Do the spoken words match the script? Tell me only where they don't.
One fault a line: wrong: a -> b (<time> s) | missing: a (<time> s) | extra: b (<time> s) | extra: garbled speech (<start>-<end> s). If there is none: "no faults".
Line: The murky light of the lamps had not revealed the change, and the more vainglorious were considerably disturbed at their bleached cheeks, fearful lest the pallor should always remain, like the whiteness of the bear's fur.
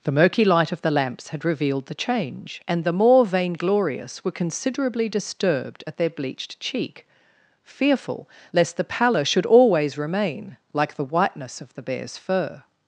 missing: not (1.4 s)
wrong: cheeks -> cheek (6.6 s)